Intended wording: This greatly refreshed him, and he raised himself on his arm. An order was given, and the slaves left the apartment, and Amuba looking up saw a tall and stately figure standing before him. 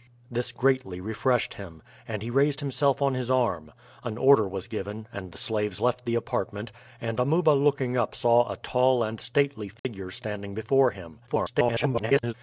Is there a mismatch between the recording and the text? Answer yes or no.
yes